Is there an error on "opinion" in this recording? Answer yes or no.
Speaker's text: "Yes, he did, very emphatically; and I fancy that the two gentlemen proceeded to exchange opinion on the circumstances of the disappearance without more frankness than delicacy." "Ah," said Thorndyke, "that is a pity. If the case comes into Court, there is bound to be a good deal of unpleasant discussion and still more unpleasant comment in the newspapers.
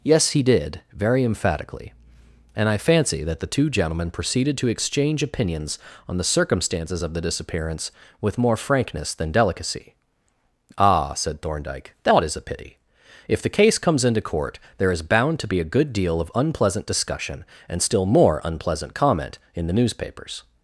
yes